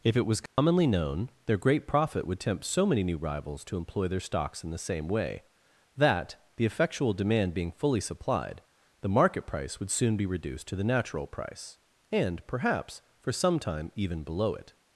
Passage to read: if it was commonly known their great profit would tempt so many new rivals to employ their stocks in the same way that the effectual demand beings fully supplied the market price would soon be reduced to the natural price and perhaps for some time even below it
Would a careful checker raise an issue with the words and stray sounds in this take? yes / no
yes